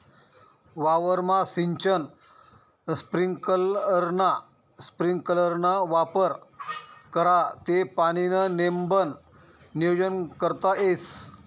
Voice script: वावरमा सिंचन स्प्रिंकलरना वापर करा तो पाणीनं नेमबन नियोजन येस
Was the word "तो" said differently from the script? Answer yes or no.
yes